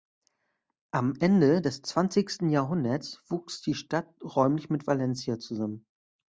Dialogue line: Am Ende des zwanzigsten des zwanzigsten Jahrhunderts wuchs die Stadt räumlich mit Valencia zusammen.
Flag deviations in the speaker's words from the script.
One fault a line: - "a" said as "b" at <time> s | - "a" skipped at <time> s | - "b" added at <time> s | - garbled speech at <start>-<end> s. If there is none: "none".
- "des zwanzigsten" skipped at 2.5 s